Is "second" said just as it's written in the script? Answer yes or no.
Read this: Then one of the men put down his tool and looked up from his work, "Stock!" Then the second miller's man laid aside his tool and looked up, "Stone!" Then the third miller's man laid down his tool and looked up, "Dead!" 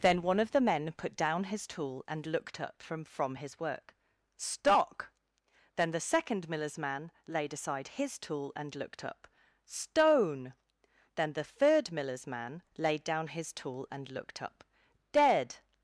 yes